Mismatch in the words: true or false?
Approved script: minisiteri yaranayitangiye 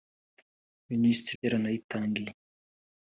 false